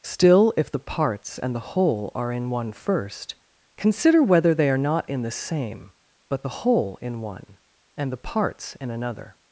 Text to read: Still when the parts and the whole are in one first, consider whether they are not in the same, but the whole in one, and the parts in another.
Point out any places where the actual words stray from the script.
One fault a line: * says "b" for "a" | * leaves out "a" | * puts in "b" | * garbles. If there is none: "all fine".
* says "if" for "when"